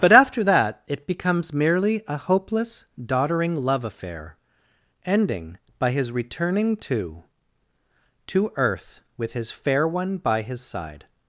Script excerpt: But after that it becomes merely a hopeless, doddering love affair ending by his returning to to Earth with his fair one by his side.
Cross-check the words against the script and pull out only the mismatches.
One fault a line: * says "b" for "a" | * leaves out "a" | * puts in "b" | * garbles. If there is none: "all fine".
all fine